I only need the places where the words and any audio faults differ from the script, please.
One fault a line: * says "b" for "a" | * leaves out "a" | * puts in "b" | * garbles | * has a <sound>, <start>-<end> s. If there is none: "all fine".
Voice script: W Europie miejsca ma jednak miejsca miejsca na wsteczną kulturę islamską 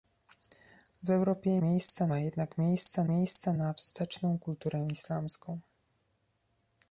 all fine